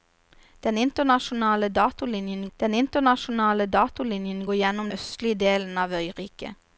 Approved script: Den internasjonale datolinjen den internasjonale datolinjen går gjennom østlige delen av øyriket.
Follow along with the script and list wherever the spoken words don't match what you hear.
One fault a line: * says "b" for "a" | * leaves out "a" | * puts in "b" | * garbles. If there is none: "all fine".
all fine